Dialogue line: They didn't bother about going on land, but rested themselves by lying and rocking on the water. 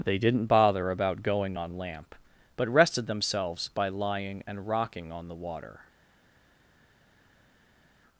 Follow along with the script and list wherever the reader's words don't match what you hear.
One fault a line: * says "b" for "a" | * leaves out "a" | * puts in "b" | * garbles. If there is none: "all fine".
* says "lamp" for "land"